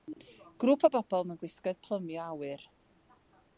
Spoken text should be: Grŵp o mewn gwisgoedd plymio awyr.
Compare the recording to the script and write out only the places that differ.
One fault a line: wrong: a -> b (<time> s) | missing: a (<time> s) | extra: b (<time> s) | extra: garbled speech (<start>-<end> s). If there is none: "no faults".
extra: bobl (0.9 s)